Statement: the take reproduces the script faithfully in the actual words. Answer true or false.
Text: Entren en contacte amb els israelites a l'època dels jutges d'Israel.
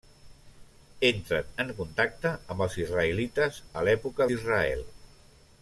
false